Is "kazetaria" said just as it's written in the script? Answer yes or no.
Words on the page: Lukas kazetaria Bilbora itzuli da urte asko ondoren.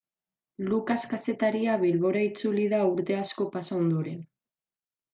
yes